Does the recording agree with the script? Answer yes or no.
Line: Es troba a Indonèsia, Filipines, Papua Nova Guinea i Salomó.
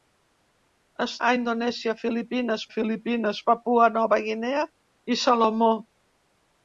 no